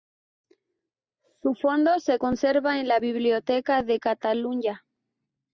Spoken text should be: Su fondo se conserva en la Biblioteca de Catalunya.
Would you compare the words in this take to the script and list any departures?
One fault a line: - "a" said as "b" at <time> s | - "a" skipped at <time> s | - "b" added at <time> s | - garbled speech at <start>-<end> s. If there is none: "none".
none